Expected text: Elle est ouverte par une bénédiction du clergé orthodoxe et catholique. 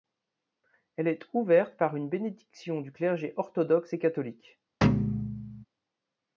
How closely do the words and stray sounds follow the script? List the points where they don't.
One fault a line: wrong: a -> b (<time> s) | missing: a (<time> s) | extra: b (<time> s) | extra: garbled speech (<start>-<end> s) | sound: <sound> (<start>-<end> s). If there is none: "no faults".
sound: thud (4.8-5.6 s)